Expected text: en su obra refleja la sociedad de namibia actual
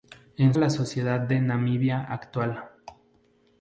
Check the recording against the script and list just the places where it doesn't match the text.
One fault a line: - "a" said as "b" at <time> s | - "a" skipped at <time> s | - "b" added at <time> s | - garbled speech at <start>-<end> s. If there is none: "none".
- "su obra refleja" skipped at 0.6 s